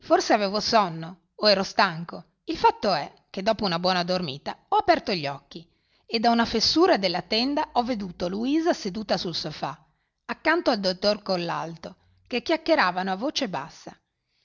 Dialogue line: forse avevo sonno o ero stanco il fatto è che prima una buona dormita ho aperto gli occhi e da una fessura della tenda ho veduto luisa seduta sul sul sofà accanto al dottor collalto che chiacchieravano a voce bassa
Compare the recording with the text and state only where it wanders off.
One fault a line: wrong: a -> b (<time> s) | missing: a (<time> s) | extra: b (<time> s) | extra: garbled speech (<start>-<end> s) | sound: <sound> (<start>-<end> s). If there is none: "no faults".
wrong: prima -> dopo (3.4 s)
missing: sul (9.3 s)